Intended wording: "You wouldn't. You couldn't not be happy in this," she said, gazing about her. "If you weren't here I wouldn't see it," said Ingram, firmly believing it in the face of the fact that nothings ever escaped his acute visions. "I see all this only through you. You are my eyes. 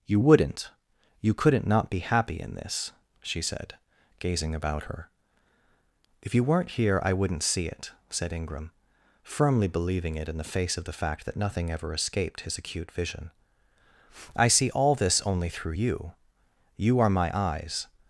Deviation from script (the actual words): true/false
true